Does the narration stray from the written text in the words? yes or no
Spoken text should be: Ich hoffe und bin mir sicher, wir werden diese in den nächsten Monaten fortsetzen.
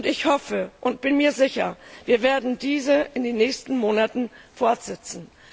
no